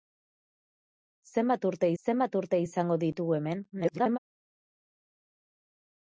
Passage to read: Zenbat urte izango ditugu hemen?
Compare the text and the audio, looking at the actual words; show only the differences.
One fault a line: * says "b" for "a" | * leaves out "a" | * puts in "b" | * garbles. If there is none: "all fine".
* puts in "zenbat urte"
* garbles